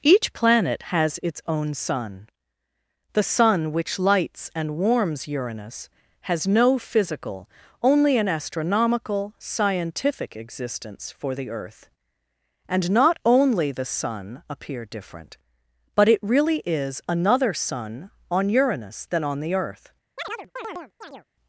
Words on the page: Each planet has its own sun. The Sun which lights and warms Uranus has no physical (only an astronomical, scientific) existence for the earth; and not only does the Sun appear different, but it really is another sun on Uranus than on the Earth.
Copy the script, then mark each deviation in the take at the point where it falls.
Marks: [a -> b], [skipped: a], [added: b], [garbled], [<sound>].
Each planet has its own sun. The Sun which lights and warms Uranus has no physical (only an astronomical, scientific) existence for the earth; and not only [skipped: does] the Sun appear different, but it really is another sun on Uranus than on the Earth. [chirp]